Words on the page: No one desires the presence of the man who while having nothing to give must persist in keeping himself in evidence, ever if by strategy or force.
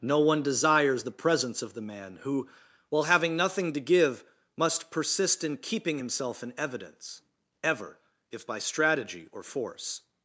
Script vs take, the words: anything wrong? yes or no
no